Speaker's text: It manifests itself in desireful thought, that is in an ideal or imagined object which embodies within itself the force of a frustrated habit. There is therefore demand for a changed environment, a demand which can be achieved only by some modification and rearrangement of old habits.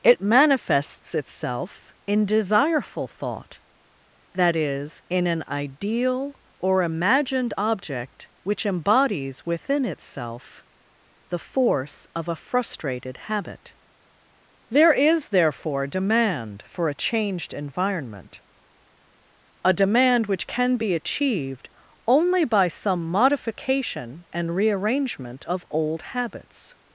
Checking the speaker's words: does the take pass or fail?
pass